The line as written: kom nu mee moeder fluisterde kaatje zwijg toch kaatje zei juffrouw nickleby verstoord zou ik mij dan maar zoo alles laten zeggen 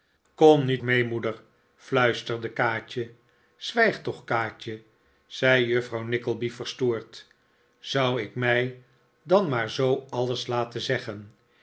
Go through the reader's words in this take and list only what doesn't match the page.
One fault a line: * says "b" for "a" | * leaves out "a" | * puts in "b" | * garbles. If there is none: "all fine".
all fine